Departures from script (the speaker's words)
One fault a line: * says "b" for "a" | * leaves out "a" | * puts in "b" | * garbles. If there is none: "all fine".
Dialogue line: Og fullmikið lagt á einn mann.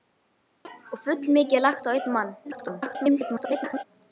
* garbles